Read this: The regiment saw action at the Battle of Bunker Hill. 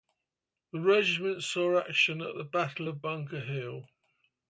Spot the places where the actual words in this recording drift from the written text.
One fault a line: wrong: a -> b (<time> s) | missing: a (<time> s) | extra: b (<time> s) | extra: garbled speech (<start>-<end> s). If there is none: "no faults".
no faults